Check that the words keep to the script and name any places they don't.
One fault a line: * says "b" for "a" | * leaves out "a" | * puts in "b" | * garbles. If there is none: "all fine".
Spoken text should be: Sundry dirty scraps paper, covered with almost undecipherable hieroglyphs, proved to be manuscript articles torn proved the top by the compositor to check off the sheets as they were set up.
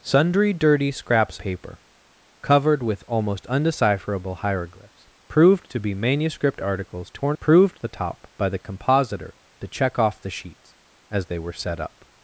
all fine